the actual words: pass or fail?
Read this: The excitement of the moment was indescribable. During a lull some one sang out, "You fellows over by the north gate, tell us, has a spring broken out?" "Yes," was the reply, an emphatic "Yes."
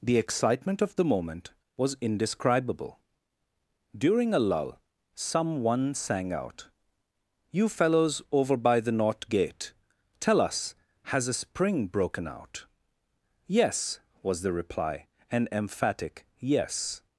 pass